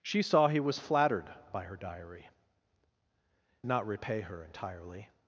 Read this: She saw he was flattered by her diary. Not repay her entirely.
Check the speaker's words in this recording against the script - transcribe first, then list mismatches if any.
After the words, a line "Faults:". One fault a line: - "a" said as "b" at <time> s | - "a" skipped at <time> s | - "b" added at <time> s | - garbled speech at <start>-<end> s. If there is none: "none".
She saw he was flattered by her diary. Not repay her entirely.
Faults:
none